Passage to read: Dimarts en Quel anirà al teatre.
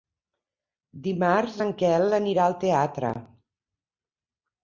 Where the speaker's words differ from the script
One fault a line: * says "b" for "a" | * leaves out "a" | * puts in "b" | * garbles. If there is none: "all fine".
all fine